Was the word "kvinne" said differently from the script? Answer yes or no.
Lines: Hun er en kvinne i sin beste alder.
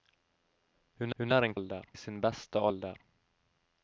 yes